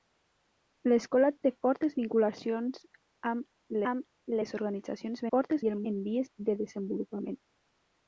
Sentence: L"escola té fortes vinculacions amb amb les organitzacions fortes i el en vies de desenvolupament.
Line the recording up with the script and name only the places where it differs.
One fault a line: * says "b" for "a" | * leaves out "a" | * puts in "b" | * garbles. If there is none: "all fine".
all fine